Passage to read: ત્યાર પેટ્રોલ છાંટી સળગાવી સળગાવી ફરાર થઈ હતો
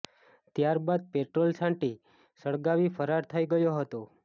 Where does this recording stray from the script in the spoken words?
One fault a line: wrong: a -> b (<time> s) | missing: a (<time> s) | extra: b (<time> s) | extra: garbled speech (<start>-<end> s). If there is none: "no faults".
extra: બાદ (0.8 s)
missing: સળગાવી (2.9 s)
extra: ગયો (3.5 s)